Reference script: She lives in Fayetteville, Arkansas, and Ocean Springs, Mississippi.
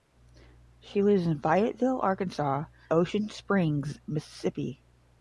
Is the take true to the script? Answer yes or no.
no